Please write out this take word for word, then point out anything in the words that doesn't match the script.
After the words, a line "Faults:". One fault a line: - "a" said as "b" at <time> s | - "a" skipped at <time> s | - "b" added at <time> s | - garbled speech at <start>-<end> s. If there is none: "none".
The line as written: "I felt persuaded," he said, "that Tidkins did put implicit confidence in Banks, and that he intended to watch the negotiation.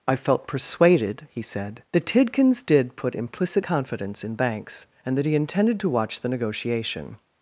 "I felt persuaded," he said, "that Tidkins did put implicit confidence in Banks, and that he intended to watch the negotiation.
Faults:
none